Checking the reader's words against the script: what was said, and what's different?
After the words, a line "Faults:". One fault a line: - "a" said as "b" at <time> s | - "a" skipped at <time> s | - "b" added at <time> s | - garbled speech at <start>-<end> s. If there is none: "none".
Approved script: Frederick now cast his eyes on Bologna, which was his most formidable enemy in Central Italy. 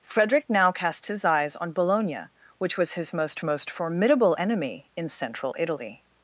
Frederick now cast his eyes on Bologna, which was his most most formidable enemy in Central Italy.
Faults:
- "most" added at 3.4 s